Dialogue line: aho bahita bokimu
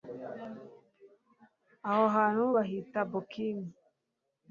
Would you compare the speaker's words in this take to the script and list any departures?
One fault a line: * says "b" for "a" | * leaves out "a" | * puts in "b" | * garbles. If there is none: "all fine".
* puts in "hantu"